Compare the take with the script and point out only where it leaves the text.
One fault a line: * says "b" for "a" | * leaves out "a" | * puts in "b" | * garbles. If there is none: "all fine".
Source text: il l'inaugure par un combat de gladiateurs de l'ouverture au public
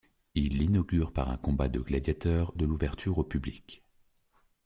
all fine